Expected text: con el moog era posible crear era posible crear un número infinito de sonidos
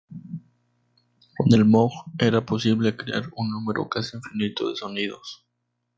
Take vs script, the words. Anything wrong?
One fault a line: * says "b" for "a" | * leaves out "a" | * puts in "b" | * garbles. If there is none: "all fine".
* leaves out "era posible crear"
* puts in "casi"